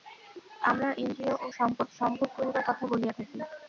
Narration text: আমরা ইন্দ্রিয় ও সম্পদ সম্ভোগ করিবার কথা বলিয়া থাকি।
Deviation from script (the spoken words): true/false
false